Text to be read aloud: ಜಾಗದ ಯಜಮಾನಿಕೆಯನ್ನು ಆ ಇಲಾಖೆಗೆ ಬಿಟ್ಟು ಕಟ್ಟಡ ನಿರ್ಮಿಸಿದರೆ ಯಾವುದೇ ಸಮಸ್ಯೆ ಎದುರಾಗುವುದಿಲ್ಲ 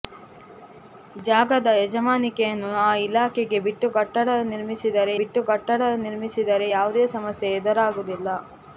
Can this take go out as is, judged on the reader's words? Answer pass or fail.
fail